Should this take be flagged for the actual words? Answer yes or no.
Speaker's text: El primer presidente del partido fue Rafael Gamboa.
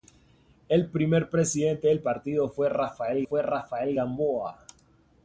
yes